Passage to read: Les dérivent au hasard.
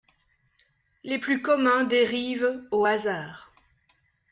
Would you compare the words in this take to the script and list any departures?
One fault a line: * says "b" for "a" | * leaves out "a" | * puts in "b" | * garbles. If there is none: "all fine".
* puts in "plus communs"